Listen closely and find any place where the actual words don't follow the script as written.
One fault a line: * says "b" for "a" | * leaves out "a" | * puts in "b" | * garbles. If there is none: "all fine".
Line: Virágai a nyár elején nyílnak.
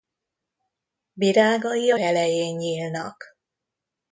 * leaves out "nyár"